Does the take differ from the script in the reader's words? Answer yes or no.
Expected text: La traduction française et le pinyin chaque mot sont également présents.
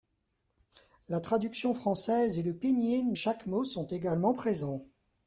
no